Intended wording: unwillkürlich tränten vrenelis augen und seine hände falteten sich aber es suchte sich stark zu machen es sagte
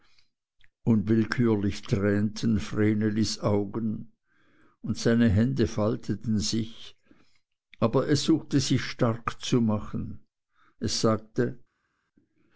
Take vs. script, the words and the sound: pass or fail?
pass